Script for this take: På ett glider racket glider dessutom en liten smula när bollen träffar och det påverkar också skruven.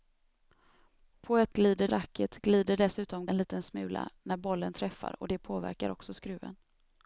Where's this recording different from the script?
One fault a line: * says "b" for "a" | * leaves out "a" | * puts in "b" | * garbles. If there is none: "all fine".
all fine